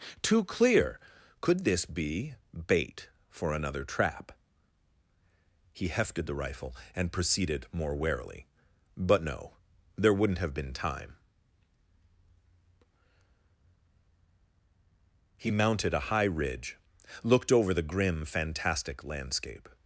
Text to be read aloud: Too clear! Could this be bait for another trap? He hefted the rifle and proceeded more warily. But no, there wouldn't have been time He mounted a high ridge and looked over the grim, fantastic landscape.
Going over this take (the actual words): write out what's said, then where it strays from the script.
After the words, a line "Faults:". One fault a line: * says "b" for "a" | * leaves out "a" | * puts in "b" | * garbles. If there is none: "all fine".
Too clear! Could this be bait for another trap? He hefted the rifle and proceeded more warily. But no, there wouldn't have been time He mounted a high ridge looked over the grim, fantastic landscape.
Faults:
* leaves out "and"